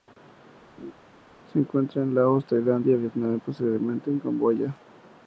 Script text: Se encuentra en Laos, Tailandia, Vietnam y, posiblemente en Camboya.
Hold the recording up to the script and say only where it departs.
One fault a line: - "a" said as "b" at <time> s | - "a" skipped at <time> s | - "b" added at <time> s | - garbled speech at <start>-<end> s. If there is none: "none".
none